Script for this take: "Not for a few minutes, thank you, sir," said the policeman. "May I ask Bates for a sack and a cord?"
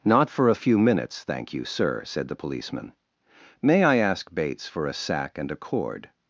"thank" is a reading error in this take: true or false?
false